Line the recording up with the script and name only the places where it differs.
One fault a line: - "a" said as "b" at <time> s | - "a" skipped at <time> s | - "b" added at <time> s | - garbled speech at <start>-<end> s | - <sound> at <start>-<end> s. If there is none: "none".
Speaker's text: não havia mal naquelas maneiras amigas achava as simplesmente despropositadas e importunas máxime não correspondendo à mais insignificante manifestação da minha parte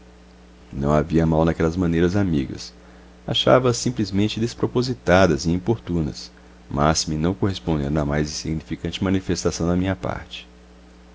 none